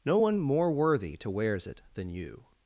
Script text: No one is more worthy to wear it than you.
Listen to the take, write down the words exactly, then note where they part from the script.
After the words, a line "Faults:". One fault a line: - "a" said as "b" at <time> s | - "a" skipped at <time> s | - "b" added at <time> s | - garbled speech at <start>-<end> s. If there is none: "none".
No one more worthy to wears it than you.
Faults:
- "is" skipped at 0.4 s
- "wear" said as "wears" at 1.3 s